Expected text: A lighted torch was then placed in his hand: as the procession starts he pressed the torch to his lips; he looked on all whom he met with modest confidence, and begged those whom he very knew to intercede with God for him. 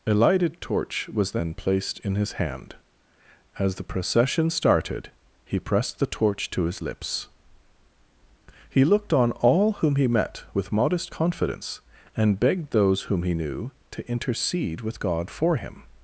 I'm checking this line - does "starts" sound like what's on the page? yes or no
no